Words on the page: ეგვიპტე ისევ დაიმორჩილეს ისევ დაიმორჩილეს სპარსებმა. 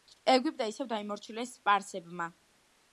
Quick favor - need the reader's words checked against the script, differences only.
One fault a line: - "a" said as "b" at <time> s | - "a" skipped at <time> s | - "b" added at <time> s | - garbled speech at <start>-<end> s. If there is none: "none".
- "ისევ დაიმორჩილეს" skipped at 1.5 s